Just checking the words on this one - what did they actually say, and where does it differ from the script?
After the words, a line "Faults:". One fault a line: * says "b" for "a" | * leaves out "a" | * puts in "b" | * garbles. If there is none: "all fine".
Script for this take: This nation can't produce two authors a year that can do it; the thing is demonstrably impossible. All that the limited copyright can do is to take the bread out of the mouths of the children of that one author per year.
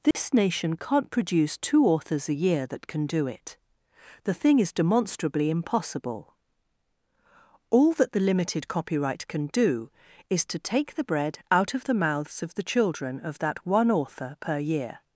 This nation can't produce two authors a year that can do it; the thing is demonstrably impossible. All that the limited copyright can do is to take the bread out of the mouths of the children of that one author per year.
Faults:
all fine